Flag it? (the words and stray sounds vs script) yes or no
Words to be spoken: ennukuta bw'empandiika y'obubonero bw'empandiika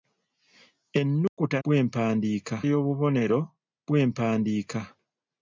yes